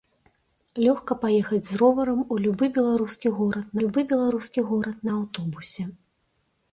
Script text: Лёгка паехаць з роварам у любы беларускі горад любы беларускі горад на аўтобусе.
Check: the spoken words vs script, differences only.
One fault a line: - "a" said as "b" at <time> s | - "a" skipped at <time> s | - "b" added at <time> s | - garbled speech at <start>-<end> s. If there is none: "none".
none